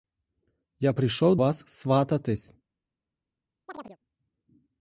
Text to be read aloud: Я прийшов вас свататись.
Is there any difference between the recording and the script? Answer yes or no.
no